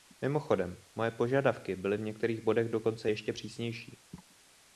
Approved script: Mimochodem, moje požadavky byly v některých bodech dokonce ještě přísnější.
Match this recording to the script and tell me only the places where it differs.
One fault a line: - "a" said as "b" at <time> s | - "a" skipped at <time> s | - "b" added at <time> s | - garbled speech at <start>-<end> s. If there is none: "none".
none